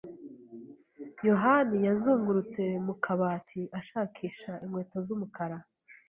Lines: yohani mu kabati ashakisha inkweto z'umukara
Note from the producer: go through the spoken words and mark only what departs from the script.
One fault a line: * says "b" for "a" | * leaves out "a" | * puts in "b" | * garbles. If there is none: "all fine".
* puts in "yazungurutse"